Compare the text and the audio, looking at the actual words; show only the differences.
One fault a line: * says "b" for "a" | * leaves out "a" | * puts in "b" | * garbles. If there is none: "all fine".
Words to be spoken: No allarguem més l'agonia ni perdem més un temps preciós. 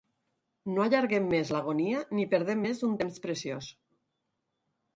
all fine